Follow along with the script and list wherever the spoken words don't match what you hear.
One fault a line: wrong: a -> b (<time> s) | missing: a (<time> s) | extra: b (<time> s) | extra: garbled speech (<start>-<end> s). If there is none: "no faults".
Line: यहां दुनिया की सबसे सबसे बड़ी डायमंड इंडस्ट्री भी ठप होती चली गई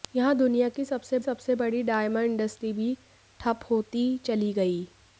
no faults